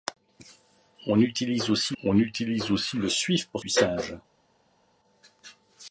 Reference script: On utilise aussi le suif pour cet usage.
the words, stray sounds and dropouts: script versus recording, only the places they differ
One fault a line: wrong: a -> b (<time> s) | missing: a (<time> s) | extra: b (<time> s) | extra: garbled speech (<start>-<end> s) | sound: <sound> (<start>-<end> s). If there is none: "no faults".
extra: on utilise aussi (2.0 s)
missing: cet (3.6 s)